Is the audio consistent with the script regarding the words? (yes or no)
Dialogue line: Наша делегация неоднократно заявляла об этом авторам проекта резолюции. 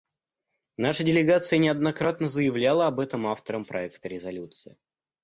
yes